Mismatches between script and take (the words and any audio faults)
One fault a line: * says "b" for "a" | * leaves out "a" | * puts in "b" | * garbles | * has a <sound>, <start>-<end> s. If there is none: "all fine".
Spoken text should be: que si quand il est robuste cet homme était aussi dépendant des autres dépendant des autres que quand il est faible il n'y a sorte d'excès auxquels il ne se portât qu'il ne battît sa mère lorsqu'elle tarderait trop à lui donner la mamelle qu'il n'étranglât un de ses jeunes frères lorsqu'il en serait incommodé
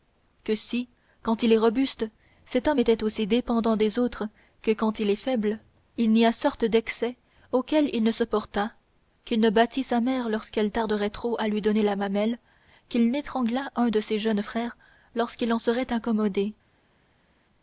* leaves out "dépendant des autres"